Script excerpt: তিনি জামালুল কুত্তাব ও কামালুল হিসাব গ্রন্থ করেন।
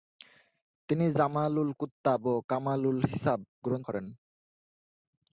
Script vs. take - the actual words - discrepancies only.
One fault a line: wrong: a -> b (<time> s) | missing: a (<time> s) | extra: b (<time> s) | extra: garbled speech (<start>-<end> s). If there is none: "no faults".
no faults